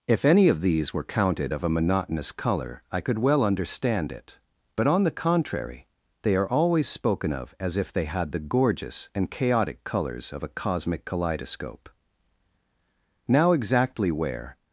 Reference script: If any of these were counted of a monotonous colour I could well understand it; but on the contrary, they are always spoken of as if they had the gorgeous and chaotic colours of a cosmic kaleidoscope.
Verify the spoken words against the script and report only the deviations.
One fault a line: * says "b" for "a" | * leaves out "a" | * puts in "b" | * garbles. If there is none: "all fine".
* puts in "Now exactly where"